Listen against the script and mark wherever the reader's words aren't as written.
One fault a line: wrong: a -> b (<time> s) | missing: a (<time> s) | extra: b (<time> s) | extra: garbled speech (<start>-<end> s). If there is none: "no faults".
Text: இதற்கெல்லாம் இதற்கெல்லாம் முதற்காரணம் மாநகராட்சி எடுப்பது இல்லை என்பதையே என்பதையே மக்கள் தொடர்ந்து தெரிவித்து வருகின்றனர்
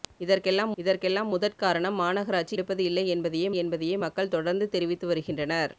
no faults